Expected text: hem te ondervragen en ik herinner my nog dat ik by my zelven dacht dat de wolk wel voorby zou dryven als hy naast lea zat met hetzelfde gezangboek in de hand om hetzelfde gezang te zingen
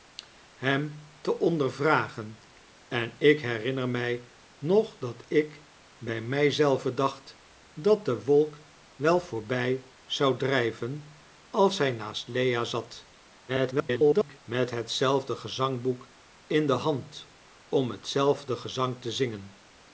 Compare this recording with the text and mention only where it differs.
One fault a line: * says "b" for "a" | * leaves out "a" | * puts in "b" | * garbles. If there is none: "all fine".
* garbles